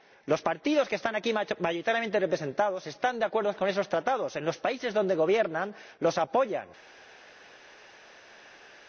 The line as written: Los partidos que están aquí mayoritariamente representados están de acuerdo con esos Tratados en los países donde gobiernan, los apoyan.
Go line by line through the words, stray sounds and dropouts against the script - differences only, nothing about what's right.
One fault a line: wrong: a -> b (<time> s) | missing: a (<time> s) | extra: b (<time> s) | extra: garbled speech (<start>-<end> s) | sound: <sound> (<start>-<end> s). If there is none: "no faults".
no faults